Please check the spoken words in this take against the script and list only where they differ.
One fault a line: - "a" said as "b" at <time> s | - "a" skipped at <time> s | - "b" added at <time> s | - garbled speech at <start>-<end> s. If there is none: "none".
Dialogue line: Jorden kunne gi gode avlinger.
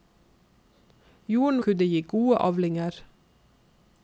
none